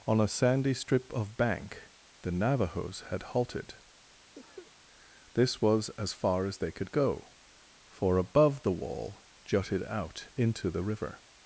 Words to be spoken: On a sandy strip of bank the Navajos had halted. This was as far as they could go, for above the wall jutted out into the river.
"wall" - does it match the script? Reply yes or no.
yes